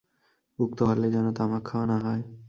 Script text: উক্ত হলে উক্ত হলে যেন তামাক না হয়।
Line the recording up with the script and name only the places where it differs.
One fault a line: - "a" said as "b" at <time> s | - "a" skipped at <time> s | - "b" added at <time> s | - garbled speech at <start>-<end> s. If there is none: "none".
- "উক্ত হলে" skipped at 1.1 s
- "খাওয়া" added at 1.6 s